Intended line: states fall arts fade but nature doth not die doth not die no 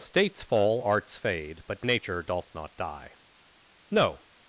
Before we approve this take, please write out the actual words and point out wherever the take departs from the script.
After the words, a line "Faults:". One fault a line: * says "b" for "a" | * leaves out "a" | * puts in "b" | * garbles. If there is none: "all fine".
states fall arts fade but nature doth not die no
Faults:
* leaves out "doth not die"